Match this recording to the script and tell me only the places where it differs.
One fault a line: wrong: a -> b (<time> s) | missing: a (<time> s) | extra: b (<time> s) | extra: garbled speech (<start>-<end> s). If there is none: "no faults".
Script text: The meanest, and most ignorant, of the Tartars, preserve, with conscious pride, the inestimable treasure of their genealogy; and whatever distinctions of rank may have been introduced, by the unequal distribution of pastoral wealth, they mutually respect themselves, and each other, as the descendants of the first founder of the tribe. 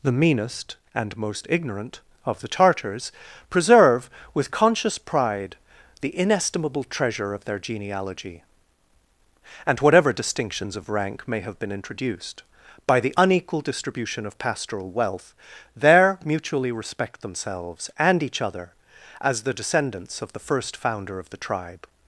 wrong: they -> there (15.7 s)